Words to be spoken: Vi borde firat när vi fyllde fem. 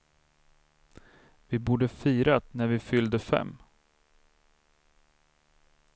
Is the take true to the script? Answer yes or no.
yes